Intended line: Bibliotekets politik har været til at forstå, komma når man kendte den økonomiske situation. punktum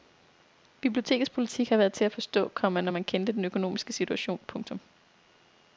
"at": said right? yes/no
yes